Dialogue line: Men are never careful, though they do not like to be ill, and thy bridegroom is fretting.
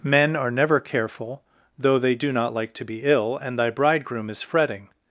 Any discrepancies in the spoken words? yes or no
no